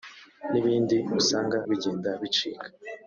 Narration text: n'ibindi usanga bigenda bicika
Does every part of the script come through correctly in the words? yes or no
yes